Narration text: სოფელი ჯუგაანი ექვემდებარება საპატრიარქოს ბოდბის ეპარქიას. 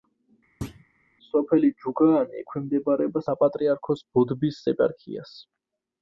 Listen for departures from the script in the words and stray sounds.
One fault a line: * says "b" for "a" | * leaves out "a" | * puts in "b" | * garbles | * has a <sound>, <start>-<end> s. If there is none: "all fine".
* has a thud, 0.6-0.8 s